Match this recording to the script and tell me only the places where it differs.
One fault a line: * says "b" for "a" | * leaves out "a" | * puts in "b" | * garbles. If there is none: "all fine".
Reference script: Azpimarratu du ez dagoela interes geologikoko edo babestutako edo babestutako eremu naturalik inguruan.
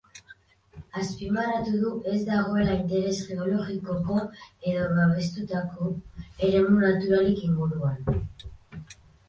* leaves out "edo babestutako"